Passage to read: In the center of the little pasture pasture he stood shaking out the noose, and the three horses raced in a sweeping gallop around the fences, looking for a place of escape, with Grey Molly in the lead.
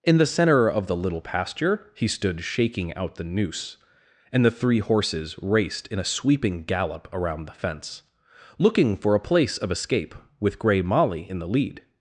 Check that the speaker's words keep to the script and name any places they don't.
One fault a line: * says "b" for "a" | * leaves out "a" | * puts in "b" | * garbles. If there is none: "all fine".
* leaves out "pasture"
* says "fence" for "fences"